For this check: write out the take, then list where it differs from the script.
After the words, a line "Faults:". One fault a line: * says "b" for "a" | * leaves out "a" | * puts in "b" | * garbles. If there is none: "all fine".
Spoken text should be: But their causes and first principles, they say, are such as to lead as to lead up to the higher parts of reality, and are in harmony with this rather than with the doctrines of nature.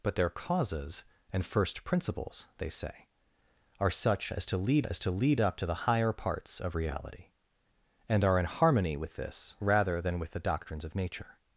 But their causes and first principles, they say, are such as to lead as to lead up to the higher parts of reality, and are in harmony with this rather than with the doctrines of nature.
Faults:
all fine